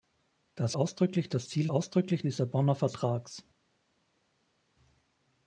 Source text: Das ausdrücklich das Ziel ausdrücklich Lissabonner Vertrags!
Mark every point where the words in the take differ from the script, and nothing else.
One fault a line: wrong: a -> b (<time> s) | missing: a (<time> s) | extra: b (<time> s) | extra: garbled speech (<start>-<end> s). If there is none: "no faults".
no faults